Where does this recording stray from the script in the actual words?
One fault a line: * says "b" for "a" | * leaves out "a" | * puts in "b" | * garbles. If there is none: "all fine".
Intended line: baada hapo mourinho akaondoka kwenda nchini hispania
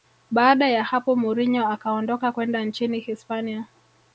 * puts in "ya"